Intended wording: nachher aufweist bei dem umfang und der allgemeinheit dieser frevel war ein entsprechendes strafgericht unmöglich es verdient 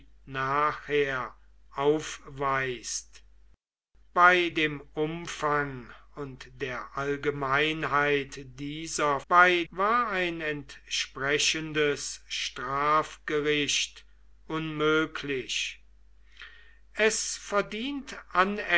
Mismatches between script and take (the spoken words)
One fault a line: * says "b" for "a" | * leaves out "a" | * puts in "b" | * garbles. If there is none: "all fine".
* says "bei" for "frevel"